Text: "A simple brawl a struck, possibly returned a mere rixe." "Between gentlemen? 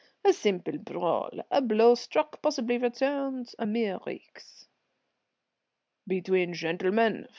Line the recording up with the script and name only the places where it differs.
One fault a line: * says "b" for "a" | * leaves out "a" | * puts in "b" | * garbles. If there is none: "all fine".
* puts in "blow"